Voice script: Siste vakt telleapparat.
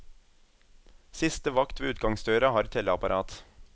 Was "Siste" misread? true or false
false